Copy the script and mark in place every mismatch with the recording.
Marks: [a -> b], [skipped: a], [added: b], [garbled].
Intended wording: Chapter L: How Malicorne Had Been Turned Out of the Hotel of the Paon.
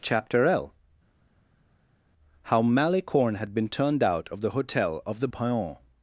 Chapter L: How Malicorne Had Been Turned Out of the Hotel of the Paon.